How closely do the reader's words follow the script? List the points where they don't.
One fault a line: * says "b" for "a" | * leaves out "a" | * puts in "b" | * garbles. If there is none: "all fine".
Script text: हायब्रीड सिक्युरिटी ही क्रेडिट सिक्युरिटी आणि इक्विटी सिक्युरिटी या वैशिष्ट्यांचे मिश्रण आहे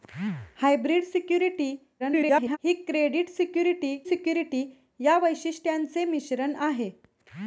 * garbles
* leaves out "आणि इक्विटी"